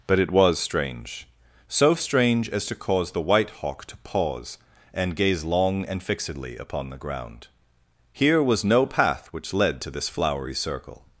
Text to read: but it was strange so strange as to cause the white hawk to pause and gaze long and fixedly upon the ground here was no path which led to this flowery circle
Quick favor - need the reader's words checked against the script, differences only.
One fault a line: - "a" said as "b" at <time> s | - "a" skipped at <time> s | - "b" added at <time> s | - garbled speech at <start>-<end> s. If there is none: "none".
none